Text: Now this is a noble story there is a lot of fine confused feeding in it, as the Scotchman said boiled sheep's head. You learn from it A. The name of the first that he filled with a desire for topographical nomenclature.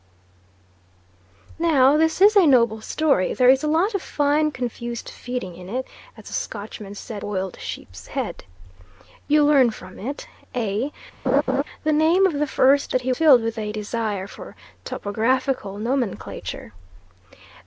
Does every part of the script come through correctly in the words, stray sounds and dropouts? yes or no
no